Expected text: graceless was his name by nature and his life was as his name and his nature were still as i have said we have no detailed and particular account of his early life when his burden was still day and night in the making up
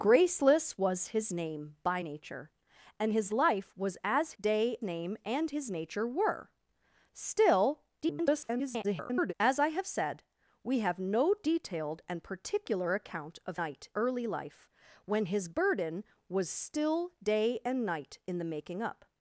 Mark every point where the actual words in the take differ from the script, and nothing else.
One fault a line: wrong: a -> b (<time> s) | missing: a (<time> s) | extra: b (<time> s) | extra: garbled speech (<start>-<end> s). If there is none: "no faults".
wrong: his -> day (4.4 s)
extra: garbled speech (8.0-9.3 s)
wrong: his -> night (13.5 s)